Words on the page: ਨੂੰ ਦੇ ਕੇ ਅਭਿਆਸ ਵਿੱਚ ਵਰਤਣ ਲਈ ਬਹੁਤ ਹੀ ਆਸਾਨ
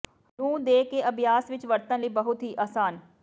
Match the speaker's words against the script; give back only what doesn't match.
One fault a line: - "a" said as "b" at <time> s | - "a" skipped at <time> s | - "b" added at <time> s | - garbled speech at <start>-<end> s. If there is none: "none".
none